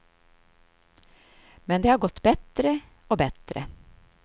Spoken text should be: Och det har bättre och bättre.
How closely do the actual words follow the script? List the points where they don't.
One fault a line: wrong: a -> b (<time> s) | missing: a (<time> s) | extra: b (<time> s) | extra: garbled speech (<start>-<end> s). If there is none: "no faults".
wrong: Och -> Men (1.6 s)
extra: gått (2.0 s)